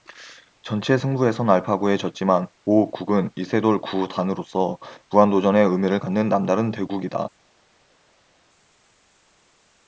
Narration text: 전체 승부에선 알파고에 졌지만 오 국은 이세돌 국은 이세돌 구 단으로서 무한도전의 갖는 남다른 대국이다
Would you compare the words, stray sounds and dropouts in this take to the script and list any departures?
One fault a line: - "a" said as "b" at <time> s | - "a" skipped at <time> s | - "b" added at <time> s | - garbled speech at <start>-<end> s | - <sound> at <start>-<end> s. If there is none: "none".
- "국은 이세돌" skipped at 3.8 s
- "의미를" added at 5.6 s